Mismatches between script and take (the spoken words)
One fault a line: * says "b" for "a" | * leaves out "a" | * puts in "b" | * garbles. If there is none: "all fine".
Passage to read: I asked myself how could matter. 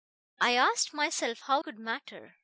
all fine